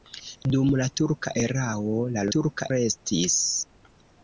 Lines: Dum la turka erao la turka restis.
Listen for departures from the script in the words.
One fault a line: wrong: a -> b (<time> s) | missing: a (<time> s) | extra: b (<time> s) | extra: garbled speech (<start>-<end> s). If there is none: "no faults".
no faults